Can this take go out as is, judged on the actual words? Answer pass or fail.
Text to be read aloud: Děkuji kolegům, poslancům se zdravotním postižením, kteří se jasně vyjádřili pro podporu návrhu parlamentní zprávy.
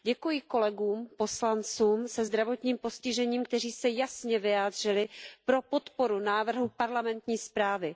pass